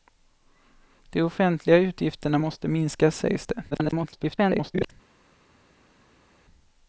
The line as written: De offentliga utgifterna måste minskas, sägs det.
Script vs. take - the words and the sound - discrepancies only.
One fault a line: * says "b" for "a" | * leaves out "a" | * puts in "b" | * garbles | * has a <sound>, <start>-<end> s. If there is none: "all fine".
* garbles